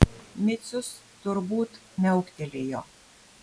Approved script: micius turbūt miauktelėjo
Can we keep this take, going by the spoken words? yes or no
yes